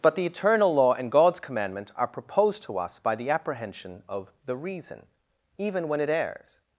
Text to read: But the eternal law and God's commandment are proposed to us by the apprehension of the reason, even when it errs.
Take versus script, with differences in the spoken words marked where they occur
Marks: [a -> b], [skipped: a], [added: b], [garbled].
But the eternal law and God's commandment are proposed to us by the apprehension of the reason, even when it errs.